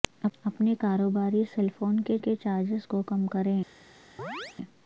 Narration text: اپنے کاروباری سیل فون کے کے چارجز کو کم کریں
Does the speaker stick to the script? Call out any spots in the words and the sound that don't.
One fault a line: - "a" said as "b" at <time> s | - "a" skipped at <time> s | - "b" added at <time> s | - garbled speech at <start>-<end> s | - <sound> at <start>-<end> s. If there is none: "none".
- chirp at 4.2-4.6 s